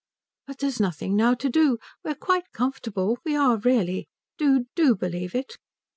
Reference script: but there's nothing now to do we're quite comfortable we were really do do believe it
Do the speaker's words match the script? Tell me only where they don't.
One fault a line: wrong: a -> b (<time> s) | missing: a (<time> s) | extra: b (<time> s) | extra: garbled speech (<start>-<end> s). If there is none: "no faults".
wrong: were -> are (3.3 s)